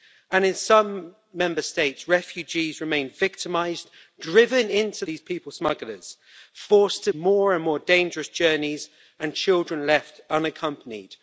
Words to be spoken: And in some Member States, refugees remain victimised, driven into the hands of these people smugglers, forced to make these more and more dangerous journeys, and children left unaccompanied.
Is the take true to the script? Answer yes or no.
no